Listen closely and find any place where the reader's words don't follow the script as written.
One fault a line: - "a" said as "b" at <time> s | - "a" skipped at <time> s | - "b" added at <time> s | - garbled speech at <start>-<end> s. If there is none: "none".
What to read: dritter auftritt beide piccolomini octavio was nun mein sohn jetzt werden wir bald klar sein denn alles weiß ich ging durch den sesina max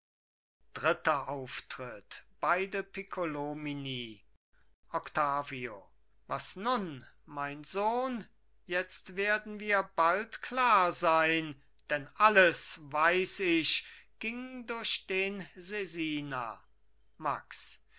none